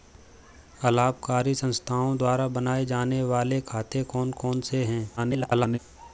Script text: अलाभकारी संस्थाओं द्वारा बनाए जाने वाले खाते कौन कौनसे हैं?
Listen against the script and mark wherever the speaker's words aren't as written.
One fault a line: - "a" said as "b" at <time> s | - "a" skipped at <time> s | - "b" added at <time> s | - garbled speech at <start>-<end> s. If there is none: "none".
- garbled speech at 5.2-5.8 s